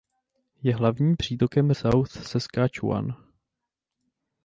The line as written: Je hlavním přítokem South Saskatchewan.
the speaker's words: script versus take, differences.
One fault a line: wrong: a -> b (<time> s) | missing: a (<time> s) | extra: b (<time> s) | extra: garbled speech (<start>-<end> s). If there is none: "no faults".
no faults